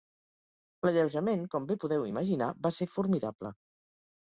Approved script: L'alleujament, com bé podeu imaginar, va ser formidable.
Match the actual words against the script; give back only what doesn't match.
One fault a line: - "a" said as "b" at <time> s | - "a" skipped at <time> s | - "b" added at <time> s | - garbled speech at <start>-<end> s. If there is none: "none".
none